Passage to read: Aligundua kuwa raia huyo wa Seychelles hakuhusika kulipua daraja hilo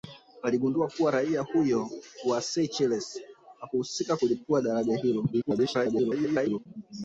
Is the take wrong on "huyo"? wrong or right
right